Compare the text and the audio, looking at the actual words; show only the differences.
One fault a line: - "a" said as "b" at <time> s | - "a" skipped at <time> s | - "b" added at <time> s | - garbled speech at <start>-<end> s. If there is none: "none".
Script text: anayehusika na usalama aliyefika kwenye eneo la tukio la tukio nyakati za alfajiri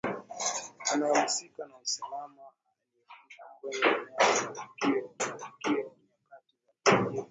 none